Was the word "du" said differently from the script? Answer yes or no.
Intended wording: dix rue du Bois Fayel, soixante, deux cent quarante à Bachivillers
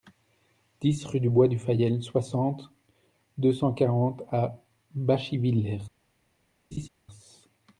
no